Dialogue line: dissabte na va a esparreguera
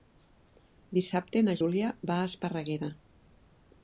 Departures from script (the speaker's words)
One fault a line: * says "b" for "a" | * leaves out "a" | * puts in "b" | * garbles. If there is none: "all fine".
* puts in "júlia"